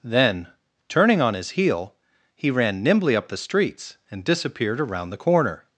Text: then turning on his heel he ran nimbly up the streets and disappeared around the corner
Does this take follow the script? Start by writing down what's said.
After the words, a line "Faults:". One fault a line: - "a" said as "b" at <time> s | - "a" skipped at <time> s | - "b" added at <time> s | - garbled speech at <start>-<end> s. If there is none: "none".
then turning on his heel he ran nimbly up the streets and disappeared around the corner
Faults:
none